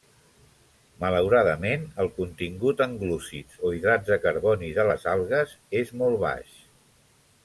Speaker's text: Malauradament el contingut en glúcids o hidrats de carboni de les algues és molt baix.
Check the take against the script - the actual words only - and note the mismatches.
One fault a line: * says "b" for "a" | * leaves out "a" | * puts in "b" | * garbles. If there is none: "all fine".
all fine